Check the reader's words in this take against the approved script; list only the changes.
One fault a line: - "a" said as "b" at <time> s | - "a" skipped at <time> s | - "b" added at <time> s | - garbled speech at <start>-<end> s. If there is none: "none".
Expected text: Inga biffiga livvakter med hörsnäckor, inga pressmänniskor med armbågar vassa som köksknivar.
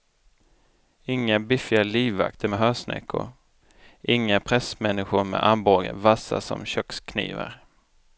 none